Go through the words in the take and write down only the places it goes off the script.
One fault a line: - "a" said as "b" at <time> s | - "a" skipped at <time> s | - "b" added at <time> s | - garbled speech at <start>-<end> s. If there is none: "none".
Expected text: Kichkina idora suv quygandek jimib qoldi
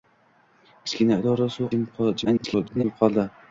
- "quygandek" skipped at 1.7 s
- garbled speech at 2.2-2.8 s